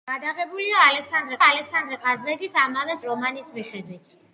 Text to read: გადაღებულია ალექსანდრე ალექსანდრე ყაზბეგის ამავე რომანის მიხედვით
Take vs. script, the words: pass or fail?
pass